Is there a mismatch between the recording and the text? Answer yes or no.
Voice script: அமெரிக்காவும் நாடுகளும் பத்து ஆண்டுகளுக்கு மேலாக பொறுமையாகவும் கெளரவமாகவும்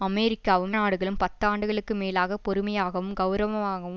no